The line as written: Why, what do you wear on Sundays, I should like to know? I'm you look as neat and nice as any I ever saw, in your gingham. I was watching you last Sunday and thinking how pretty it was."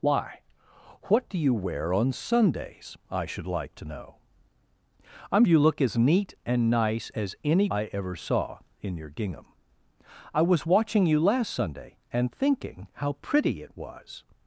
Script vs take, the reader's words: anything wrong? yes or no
no